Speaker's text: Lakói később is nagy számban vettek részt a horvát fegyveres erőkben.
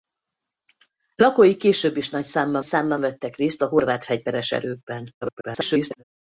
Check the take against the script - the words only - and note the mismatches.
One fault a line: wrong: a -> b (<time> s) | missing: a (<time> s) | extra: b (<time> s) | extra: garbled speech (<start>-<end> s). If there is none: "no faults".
extra: számban (2.6 s)
extra: garbled speech (5.2-6.0 s)